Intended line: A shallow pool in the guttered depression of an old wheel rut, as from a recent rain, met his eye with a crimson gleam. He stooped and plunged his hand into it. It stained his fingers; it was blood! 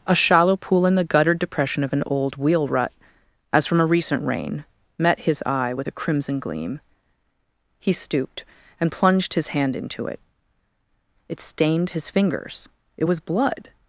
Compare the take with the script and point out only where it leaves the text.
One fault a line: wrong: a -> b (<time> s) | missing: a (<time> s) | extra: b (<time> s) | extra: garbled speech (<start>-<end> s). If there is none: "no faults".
no faults